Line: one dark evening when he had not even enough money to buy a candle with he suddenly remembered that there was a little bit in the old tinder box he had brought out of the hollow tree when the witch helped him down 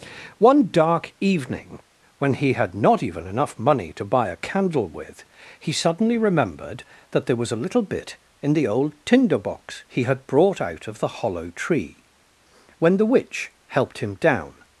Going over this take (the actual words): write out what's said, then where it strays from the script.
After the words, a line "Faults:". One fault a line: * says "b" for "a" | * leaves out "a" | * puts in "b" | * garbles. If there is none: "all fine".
one dark evening when he had not even enough money to buy a candle with he suddenly remembered that there was a little bit in the old tinder box he had brought out of the hollow tree when the witch helped him down
Faults:
all fine